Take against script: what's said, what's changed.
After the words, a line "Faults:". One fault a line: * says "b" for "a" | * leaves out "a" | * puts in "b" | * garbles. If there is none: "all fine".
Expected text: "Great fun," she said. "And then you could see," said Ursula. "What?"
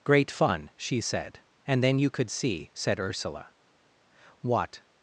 "Great fun," she said. "And then you could see," said Ursula. "What?"
Faults:
all fine